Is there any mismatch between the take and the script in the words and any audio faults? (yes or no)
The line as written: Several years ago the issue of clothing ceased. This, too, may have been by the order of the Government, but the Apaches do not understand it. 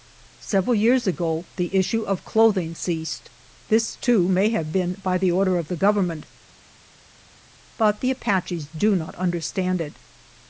no